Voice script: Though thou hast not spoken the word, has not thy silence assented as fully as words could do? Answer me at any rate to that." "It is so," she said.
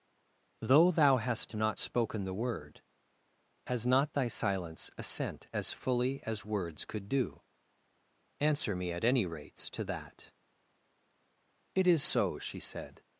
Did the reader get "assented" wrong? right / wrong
wrong